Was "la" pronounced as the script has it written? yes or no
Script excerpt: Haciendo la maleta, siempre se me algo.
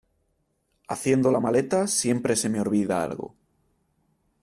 yes